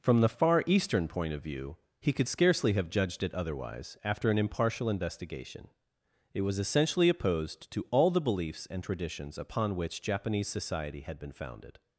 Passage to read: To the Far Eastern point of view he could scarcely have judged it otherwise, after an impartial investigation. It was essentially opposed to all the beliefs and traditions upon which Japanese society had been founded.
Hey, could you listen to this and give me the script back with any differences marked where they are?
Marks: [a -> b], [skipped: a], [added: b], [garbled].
[To -> From] the Far Eastern point of view he could scarcely have judged it otherwise, after an impartial investigation. It was essentially opposed to all the beliefs and traditions upon which Japanese society had been founded.